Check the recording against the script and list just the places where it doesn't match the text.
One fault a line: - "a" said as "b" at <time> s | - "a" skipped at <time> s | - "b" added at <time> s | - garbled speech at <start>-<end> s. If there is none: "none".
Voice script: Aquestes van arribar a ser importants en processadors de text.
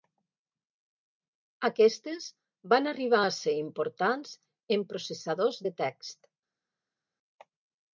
none